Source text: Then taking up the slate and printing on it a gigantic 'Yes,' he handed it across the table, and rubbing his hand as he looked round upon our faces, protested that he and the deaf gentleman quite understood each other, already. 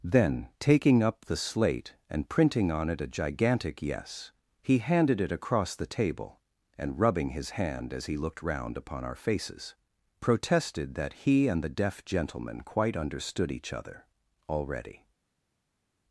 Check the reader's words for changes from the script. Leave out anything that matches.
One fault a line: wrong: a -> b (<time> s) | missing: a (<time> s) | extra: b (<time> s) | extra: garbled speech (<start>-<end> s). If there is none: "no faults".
no faults